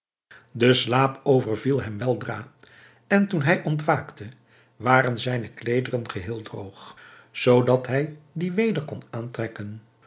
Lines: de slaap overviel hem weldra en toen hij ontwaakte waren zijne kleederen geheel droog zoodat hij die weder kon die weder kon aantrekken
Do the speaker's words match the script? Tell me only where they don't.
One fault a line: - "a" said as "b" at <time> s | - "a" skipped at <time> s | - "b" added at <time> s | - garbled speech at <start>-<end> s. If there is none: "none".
- "die weder kon" skipped at 9.0 s